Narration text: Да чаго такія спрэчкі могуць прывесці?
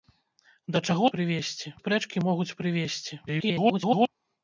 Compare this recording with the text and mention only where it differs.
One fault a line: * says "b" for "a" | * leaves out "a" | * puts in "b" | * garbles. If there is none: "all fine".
* says "прывесці" for "такія"
* garbles